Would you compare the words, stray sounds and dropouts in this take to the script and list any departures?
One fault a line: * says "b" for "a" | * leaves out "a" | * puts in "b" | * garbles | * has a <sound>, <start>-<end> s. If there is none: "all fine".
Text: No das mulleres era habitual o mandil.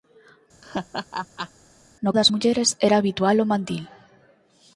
* has a laugh, 0.6-1.5 s